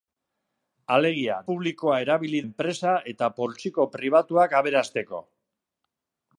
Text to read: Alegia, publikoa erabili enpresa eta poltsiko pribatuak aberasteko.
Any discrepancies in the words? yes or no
no